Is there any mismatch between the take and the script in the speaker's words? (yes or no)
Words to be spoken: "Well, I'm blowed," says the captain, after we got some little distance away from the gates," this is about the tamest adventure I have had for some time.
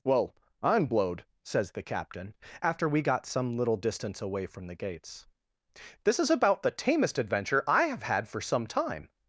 no